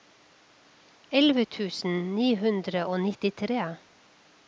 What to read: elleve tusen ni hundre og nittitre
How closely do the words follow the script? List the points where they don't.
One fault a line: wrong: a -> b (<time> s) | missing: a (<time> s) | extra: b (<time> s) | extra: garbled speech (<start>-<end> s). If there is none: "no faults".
no faults